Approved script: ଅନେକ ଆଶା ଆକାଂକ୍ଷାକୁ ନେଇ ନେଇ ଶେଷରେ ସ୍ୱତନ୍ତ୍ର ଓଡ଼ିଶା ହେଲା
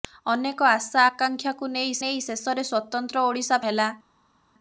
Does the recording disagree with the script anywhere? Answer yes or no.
no